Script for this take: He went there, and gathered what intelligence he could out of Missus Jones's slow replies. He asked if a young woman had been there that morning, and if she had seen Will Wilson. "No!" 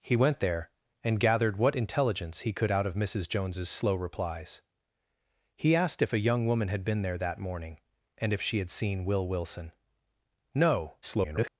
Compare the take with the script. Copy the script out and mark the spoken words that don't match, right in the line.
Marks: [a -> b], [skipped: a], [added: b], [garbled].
He went there, and gathered what intelligence he could out of Missus Jones's slow replies. He asked if a young woman had been there that morning, and if she had seen Will Wilson. "No!" [garbled]